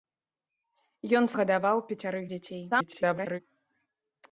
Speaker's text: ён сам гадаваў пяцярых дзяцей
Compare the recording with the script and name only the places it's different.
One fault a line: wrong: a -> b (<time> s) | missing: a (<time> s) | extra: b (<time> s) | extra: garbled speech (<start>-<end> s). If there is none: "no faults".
missing: сам (1.2 s)
extra: garbled speech (2.7-3.4 s)